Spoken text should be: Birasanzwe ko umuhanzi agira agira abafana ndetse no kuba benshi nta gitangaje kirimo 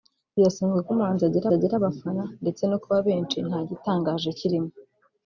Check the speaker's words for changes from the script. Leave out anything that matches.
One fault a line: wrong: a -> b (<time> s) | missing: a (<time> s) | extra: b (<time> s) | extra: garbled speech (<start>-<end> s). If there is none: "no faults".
no faults